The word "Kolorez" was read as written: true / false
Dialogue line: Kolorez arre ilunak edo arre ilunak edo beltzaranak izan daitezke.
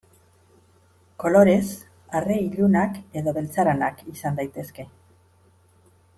true